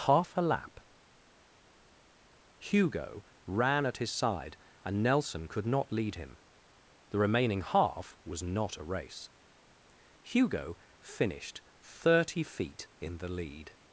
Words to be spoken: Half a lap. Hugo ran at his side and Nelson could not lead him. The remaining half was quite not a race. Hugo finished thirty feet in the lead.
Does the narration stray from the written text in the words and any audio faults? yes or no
yes